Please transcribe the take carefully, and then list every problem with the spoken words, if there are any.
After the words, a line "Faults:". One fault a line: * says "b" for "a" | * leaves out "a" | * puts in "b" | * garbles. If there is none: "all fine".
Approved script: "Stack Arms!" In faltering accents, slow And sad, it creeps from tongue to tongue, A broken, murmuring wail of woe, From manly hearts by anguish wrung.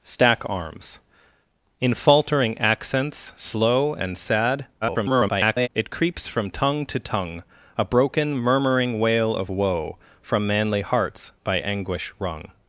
"Stack Arms!" In faltering accents, slow And sad, [garbled] it creeps from tongue to tongue, A broken, murmuring wail of woe, From manly hearts by anguish wrung.
Faults:
* garbles